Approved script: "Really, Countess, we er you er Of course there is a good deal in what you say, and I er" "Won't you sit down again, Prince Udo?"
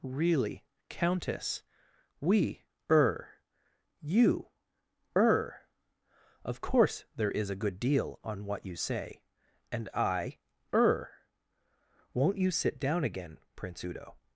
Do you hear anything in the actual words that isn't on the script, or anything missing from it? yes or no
yes